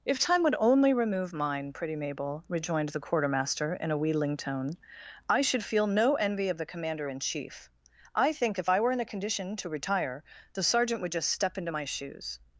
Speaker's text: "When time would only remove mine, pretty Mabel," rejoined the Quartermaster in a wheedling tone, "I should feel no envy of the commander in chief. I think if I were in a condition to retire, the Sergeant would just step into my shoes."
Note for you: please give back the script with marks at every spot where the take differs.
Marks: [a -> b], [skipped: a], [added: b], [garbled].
["When -> If] time would only remove mine, pretty Mabel," rejoined the Quartermaster in a wheedling tone, "I should feel no envy of the commander in chief. I think if I were in a condition to retire, the Sergeant would just step into my shoes."